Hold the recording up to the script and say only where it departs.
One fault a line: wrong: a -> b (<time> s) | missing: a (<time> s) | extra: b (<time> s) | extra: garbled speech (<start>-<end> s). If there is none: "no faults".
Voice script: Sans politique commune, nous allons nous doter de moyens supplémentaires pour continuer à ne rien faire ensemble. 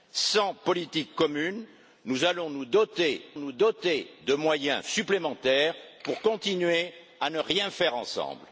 extra: nous doter (3.4 s)